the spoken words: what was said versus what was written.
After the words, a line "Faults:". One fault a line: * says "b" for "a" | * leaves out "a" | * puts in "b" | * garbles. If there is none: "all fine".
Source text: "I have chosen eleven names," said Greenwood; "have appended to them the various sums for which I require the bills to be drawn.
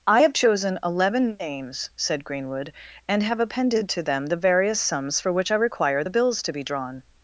"I have chosen eleven names," said Greenwood; "and have appended to them the various sums for which I require the bills to be drawn.
Faults:
* puts in "and"